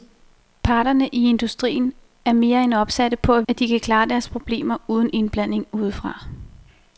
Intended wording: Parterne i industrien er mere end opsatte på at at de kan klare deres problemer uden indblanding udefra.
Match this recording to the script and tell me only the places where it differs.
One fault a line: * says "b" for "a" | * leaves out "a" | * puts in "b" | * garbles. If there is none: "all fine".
all fine